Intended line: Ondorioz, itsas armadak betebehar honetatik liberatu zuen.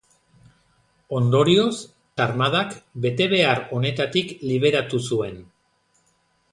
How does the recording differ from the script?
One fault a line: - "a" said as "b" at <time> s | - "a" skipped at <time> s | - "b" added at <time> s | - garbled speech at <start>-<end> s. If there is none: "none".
- "itsas" skipped at 1.7 s